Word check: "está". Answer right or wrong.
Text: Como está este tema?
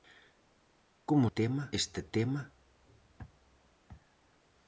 wrong